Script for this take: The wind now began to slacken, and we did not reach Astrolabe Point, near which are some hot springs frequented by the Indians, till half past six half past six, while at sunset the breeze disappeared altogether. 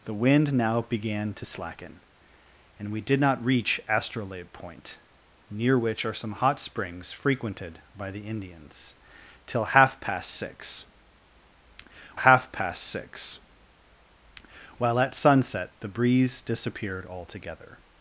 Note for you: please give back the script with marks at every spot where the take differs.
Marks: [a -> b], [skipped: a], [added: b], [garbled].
The wind now began to slacken, and we did not reach Astrolabe Point, near which are some hot springs frequented by the Indians, till half past six half past six, while at sunset the breeze disappeared altogether.